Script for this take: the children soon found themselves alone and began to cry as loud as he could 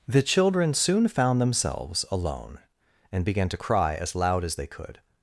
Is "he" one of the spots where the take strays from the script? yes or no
yes